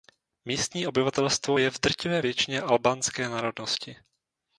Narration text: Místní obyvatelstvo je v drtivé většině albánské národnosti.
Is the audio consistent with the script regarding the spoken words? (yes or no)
yes